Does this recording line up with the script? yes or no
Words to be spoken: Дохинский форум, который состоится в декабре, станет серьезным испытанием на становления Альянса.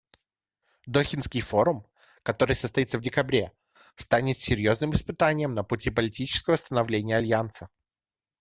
no